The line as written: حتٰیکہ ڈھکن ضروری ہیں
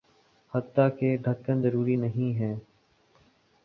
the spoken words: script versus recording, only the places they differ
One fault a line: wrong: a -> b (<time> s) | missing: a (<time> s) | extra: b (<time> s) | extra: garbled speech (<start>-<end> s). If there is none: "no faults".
extra: نہیں (2.0 s)